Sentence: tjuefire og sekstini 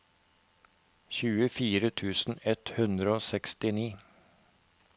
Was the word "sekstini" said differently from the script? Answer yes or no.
no